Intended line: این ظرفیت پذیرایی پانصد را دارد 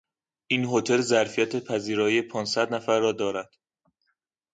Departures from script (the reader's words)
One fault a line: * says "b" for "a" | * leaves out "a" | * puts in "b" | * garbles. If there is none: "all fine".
* puts in "هتل"
* puts in "نفر"